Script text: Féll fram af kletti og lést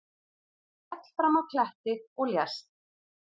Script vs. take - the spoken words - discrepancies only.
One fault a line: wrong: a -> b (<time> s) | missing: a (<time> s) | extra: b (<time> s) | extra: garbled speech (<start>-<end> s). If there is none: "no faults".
no faults